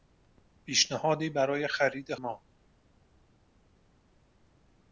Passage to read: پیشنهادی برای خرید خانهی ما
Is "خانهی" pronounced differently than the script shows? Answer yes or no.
yes